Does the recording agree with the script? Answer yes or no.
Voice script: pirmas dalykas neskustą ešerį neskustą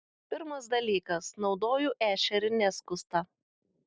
no